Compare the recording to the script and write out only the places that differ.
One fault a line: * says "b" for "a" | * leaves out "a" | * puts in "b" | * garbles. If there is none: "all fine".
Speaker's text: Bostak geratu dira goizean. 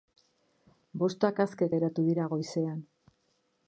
* puts in "aske"